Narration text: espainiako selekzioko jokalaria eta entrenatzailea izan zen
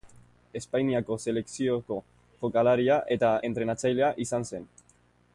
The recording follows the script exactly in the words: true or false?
true